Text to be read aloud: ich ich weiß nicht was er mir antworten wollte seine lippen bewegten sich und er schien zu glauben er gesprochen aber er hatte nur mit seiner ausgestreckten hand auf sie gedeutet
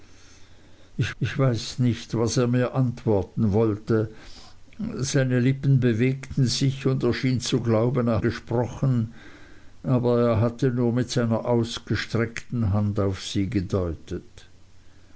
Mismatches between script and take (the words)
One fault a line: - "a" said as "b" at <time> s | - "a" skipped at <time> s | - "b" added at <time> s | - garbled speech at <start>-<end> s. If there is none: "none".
none